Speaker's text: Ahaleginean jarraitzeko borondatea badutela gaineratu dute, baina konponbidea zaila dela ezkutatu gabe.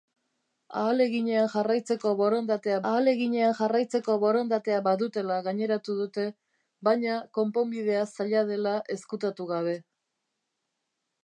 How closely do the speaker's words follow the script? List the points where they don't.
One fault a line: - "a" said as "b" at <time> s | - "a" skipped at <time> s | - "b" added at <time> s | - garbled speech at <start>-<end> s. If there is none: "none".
- "ahaleginean jarraitzeko borondatea" added at 2.9 s